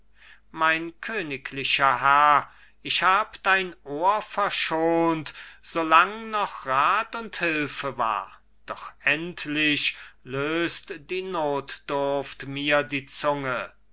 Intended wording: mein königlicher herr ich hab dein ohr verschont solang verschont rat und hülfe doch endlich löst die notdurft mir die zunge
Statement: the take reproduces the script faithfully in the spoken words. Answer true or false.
false